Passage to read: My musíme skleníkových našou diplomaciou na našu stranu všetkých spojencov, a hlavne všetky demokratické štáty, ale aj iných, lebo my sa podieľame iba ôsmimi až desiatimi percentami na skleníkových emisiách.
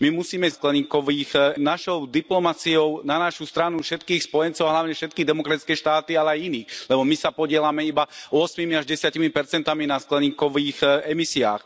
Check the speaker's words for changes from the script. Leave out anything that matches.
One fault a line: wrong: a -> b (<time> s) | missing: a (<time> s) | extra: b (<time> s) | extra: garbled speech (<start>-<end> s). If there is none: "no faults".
no faults